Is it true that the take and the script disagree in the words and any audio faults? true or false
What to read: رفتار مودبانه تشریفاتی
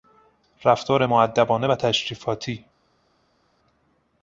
true